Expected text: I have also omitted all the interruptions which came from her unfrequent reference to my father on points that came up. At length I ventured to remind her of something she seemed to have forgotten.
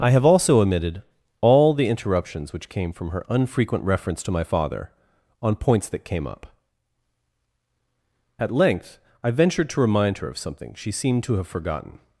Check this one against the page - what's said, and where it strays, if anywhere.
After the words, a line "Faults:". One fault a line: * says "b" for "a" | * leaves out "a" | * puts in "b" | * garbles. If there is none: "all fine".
I have also omitted all the interruptions which came from her unfrequent reference to my father on points that came up. At length I ventured to remind her of something she seemed to have forgotten.
Faults:
all fine